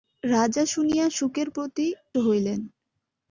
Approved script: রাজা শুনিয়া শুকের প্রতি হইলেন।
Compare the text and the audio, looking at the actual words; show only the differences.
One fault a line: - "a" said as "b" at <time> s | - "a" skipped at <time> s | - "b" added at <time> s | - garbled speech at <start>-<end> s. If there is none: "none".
none